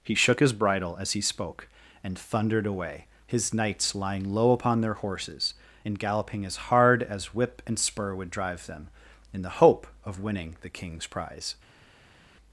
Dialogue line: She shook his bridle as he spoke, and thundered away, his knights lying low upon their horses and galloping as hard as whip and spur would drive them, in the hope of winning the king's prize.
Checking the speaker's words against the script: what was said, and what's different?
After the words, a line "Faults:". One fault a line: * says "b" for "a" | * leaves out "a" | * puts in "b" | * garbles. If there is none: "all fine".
He shook his bridle as he spoke, and thundered away, his knights lying low upon their horses and galloping as hard as whip and spur would drive them, in the hope of winning the king's prize.
Faults:
* says "He" for "She"